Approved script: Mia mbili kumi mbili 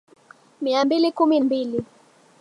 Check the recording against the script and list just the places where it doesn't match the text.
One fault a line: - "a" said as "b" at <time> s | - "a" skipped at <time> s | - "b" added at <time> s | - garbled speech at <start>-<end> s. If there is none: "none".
none